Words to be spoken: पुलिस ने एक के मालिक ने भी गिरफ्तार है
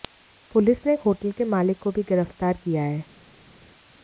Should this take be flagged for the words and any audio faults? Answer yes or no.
yes